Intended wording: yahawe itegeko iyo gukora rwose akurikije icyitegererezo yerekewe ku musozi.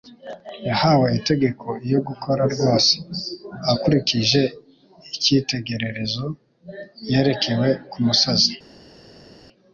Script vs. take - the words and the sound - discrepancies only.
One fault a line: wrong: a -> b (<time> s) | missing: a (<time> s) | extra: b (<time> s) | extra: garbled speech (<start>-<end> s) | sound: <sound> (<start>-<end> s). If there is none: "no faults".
no faults